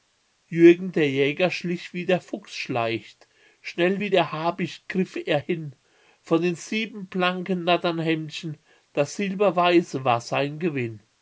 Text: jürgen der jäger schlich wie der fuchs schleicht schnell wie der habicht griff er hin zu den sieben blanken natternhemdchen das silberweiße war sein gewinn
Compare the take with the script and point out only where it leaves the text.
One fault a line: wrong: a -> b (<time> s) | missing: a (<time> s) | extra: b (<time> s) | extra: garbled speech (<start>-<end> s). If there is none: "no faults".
wrong: zu -> von (6.2 s)